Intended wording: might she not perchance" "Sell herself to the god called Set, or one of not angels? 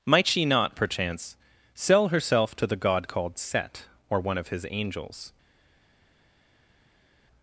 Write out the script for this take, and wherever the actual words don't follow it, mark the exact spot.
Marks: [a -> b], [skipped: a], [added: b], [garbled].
might she not perchance" "Sell herself to the god called Set, or one of [not -> his] angels?